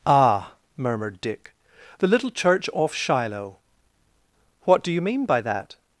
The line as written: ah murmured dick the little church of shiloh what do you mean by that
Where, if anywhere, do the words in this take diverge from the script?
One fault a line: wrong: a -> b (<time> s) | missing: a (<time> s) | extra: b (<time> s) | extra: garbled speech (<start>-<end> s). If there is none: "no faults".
wrong: of -> off (2.7 s)